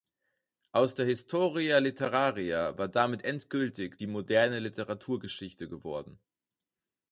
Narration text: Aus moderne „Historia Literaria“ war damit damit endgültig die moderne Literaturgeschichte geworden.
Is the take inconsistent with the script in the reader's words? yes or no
yes